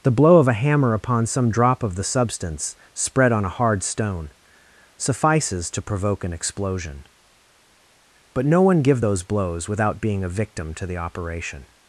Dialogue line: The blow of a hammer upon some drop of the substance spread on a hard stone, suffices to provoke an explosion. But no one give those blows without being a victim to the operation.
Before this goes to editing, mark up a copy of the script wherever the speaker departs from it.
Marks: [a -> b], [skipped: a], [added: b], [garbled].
The blow of a hammer upon some drop of the substance spread on a hard stone, suffices to provoke an explosion. But no one give those blows without being a victim to the operation.